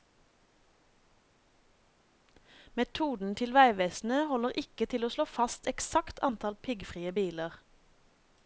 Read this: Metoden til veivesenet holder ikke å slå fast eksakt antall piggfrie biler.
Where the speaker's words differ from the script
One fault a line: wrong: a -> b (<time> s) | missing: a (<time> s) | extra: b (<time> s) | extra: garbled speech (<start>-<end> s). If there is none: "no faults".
extra: til (4.9 s)